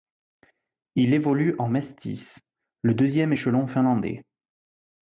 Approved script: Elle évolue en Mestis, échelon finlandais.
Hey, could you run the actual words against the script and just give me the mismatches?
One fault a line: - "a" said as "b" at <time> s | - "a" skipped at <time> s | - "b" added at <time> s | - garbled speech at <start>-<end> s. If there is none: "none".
- "Elle" said as "Il" at 0.9 s
- "le deuxième" added at 2.8 s